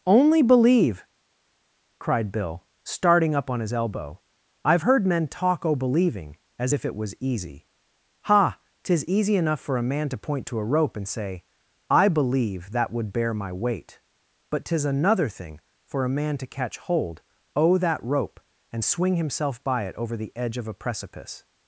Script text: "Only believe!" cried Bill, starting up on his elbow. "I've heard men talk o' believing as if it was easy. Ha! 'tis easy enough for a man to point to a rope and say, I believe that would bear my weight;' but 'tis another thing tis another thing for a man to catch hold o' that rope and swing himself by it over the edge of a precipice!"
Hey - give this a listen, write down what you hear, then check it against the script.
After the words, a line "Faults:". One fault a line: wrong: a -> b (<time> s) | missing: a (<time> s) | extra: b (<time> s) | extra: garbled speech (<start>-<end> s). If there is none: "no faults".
"Only believe!" cried Bill, starting up on his elbow. "I've heard men talk o' believing as if it was easy. Ha! 'tis easy enough for a man to point to a rope and say, I believe that would bear my weight;' but 'tis another thing for a man to catch hold o' that rope and swing himself by it over the edge of a precipice!"
Faults:
missing: tis another thing (15.6 s)